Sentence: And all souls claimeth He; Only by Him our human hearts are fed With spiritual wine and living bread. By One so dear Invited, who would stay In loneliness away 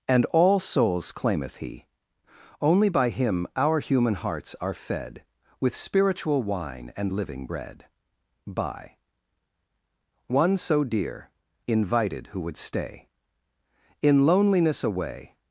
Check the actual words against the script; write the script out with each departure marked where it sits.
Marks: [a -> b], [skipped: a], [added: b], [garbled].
And all souls claimeth He; Only by Him our human hearts are fed With spiritual wine and living bread. By One so dear Invited, who would stay In loneliness away